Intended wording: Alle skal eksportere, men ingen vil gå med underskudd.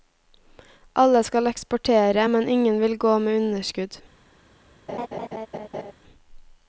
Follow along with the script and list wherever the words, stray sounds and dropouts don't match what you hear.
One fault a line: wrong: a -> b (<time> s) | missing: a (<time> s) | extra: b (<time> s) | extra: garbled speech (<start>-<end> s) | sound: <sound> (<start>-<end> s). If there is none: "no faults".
sound: laugh (4.9-5.9 s)